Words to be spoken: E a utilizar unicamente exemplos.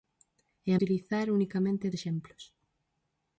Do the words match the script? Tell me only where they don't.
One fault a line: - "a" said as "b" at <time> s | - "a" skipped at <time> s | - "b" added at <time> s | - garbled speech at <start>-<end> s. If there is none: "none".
none